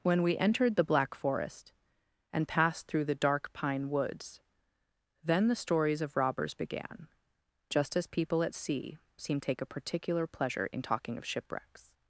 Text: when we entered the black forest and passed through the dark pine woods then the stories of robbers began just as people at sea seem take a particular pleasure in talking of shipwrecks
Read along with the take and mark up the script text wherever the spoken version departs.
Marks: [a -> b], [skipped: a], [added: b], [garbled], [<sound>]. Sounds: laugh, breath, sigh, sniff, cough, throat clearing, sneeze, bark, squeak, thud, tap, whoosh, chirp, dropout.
when we entered the black forest and passed through the dark pine woods then the stories of robbers began just as people at sea seem take a particular pleasure in talking of shipwrecks